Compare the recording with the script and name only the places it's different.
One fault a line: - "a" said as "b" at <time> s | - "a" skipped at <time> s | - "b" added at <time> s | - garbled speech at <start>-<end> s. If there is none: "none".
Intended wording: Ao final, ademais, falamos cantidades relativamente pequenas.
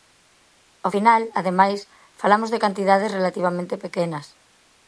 - "de" added at 2.5 s